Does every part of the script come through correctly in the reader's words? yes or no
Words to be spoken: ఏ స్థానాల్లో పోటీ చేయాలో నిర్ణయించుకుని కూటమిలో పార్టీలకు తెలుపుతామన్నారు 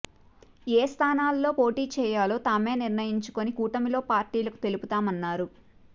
no